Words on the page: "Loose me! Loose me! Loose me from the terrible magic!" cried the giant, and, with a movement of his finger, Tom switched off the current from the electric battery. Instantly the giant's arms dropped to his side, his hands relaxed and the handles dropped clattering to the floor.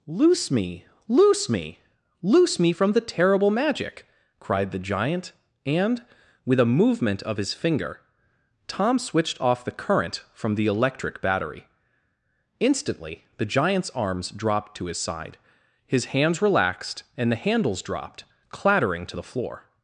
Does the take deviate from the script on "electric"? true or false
false